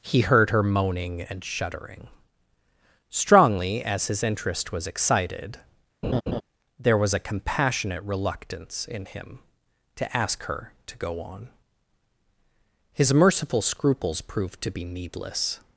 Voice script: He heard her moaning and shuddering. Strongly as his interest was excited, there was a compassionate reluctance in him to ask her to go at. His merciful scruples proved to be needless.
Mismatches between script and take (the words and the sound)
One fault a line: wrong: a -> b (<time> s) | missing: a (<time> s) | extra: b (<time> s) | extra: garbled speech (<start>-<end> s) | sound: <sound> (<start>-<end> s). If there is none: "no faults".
sound: laugh (6.0-6.4 s)
wrong: at -> on (11.2 s)